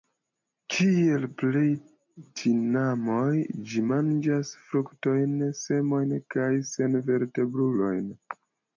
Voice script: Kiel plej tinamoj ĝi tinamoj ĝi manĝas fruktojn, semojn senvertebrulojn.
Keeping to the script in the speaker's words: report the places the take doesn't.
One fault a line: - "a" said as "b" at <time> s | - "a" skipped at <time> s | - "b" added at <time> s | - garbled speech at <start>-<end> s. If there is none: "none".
- "tinamoj ĝi" skipped at 3.9 s
- "kaj" added at 6.4 s